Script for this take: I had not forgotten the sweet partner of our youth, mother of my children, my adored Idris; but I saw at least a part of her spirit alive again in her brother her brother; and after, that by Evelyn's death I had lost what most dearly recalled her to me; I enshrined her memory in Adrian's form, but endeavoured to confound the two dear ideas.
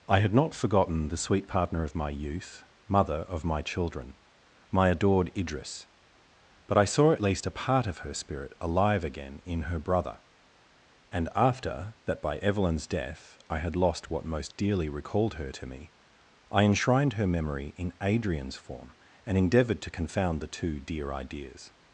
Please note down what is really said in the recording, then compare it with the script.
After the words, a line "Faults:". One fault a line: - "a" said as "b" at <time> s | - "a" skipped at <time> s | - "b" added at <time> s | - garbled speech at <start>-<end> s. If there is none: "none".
I had not forgotten the sweet partner of my youth, mother of my children, my adored Idris; but I saw at least a part of her spirit alive again in her brother; and after, that by Evelyn's death I had lost what most dearly recalled her to me; I enshrined her memory in Adrian's form, and endeavoured to confound the two dear ideas.
Faults:
- "our" said as "my" at 1.9 s
- "her brother" skipped at 10.2 s
- "but" said as "and" at 19.3 s